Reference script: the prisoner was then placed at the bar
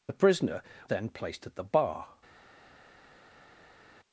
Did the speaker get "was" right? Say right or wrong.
wrong